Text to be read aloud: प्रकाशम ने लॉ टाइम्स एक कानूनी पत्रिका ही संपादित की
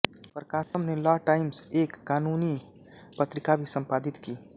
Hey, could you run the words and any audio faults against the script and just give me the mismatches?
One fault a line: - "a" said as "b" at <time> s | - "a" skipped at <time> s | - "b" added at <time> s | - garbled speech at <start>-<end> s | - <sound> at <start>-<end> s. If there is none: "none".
- dropout at 0.6-0.7 s
- "ही" said as "भी" at 3.5 s